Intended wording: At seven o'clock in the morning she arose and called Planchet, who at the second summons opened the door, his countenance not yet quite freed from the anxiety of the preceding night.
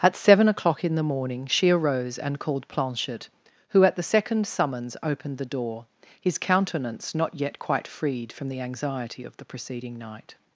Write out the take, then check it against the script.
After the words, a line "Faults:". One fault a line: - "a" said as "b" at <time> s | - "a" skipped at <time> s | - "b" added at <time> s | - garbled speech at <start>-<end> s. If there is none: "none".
At seven o'clock in the morning she arose and called Planchet, who at the second summons opened the door, his countenance not yet quite freed from the anxiety of the preceding night.
Faults:
none